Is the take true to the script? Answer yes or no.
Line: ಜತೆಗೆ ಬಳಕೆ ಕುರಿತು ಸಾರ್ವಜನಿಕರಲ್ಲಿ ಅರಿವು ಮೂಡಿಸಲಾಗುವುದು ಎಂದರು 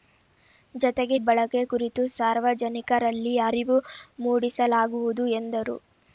yes